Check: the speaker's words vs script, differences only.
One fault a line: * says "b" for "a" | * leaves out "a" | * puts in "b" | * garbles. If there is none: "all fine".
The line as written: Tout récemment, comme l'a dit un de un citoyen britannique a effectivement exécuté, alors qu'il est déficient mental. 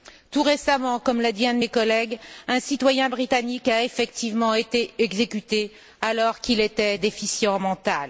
* puts in "mes collègues"
* puts in "été"
* says "était" for "est"